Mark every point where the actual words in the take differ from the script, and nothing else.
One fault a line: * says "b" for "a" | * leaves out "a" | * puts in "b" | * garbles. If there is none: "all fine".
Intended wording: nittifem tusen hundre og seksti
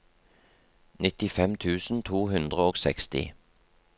* puts in "to"